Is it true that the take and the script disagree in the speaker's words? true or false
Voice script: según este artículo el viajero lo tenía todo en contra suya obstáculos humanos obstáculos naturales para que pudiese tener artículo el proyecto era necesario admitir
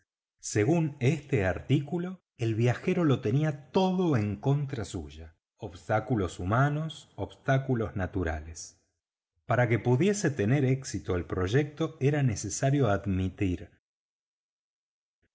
true